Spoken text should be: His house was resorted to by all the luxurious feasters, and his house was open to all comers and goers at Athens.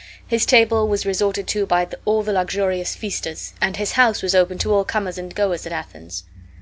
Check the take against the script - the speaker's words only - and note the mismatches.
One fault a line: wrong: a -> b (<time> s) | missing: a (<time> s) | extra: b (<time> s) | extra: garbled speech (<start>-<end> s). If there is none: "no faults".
wrong: house -> table (0.5 s)